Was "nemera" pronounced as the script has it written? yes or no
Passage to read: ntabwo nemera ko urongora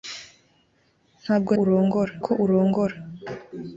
no